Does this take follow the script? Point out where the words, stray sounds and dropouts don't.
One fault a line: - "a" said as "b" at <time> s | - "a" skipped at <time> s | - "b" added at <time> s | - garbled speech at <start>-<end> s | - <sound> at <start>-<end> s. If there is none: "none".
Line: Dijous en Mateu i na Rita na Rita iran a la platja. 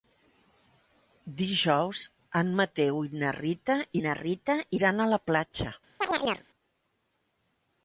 - chirp at 6.0-6.5 s